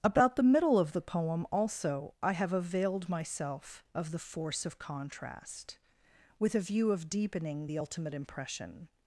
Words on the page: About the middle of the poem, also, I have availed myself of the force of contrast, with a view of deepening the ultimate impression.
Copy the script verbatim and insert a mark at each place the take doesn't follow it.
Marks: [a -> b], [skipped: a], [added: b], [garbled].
About the middle of the poem, also, I have availed myself of the force of contrast, with a view of deepening the ultimate impression.